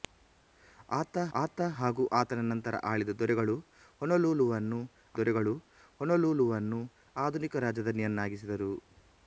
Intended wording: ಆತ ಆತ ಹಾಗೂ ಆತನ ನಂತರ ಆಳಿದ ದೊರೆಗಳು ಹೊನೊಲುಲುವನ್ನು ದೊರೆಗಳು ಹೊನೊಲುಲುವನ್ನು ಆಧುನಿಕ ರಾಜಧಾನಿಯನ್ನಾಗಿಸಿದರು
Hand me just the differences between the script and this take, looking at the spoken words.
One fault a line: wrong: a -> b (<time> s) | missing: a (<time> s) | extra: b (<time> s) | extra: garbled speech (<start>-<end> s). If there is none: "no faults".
no faults